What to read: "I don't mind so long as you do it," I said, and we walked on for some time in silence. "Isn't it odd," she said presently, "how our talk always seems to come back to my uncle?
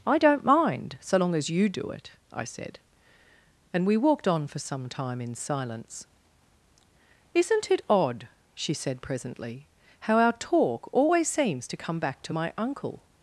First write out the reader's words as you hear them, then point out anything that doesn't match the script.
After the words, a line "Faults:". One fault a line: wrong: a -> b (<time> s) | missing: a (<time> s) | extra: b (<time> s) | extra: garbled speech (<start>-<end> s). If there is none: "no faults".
"I don't mind so long as you do it," I said, and we walked on for some time in silence. "Isn't it odd," she said presently, "how our talk always seems to come back to my uncle?
Faults:
no faults